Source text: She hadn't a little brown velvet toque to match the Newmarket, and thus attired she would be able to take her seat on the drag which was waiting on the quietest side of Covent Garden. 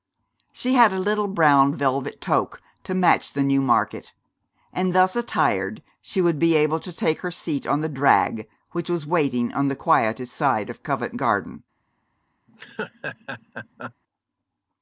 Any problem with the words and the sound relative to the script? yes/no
yes